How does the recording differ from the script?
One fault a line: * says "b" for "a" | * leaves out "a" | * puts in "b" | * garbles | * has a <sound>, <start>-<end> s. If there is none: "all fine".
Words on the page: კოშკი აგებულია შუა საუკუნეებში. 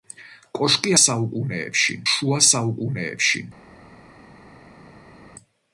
* says "საუკუნეებში" for "აგებულია"